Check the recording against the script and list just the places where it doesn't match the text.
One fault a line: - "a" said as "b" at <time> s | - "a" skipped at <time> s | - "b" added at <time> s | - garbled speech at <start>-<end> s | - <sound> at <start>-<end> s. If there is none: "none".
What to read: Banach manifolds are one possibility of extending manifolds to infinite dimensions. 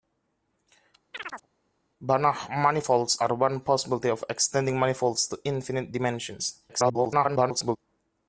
- chirp at 1.1-1.5 s
- garbled speech at 6.7-7.8 s